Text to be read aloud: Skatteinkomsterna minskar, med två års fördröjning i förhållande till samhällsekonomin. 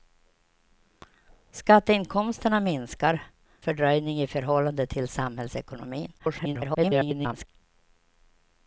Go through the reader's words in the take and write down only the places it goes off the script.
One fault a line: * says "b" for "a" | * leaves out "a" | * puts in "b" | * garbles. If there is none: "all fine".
* leaves out "med två års"
* garbles